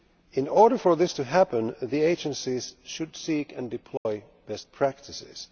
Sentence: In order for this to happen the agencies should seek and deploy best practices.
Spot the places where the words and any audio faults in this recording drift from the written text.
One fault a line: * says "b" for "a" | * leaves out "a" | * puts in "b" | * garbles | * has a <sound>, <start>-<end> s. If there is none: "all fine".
* has a dropout, 4.0-4.1 s